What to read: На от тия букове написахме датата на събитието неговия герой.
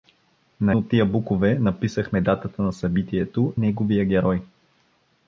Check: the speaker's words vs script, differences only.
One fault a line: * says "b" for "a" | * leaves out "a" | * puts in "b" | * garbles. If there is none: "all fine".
all fine